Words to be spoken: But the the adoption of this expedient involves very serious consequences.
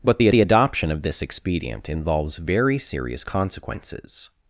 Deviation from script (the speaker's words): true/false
false